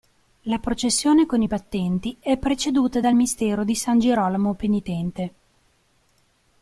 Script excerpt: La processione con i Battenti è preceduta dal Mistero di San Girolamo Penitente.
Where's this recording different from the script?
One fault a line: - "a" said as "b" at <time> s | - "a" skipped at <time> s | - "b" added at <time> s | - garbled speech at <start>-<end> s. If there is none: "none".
none